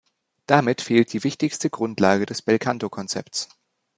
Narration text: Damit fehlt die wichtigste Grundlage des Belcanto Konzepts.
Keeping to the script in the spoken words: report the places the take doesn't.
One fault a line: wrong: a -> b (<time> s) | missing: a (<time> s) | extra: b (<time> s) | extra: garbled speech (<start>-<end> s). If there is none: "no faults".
no faults